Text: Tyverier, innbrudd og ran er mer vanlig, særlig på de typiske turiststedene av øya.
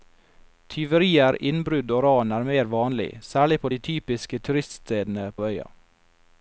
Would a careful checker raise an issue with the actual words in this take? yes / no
no